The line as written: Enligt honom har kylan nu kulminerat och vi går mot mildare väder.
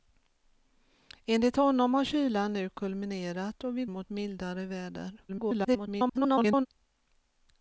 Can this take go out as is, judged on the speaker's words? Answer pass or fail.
fail